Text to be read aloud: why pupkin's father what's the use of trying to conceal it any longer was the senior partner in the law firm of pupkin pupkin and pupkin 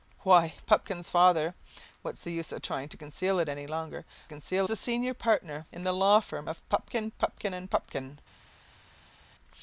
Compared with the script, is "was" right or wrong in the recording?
wrong